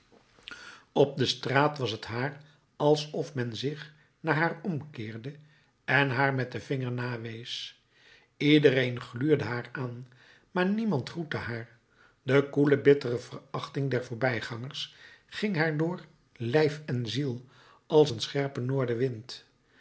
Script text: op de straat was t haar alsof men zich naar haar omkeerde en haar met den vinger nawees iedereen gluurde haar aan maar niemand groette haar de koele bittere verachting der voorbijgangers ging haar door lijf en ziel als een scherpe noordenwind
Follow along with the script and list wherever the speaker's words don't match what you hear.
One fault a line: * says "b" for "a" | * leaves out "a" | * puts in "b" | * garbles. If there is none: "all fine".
all fine